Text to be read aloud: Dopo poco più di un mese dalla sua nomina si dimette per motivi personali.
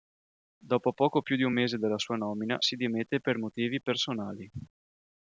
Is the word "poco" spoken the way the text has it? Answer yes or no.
yes